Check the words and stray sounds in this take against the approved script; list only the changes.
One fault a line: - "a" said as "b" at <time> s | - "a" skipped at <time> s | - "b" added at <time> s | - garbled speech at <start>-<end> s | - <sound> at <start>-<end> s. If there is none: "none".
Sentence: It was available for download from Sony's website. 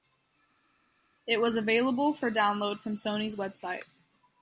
none